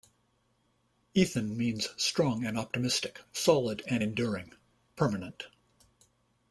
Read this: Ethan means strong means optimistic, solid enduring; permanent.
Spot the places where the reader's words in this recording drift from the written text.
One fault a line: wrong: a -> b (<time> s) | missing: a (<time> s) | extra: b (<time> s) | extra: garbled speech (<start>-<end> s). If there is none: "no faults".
wrong: means -> and (2.4 s)
extra: and (3.9 s)